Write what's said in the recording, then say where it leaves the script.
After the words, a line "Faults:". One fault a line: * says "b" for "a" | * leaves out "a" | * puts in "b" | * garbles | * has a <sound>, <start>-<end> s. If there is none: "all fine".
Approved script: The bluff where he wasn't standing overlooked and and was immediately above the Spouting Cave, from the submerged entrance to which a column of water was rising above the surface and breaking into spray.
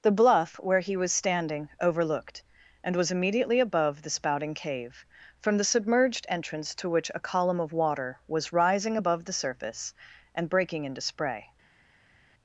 The bluff where he was standing overlooked and was immediately above the Spouting Cave, from the submerged entrance to which a column of water was rising above the surface and breaking into spray.
Faults:
* says "was" for "wasn't"
* leaves out "and"